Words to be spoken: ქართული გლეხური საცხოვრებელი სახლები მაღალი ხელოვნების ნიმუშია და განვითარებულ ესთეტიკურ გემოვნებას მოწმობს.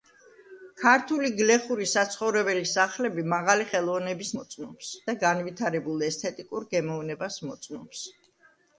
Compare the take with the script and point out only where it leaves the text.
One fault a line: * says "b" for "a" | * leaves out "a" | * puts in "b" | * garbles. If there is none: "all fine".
* says "მოწმობს" for "ნიმუშია"